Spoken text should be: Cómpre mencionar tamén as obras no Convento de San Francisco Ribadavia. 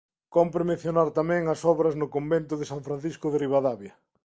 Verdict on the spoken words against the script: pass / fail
fail